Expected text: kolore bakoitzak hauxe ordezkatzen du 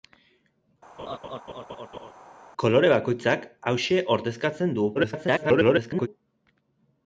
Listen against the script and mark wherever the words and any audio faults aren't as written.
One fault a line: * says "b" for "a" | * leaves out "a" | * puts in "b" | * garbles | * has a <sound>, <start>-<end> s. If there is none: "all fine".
* has a laugh, 1.0-2.1 s
* garbles